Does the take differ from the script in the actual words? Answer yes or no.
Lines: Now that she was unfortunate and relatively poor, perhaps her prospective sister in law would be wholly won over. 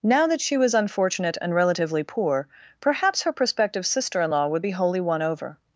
no